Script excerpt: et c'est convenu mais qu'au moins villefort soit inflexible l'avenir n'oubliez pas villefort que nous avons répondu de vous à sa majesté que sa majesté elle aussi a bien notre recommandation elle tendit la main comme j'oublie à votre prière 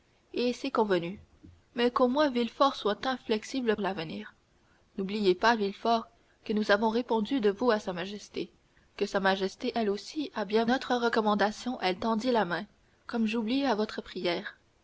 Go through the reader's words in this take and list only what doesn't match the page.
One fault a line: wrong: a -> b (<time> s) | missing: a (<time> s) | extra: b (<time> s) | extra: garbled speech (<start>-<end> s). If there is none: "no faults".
no faults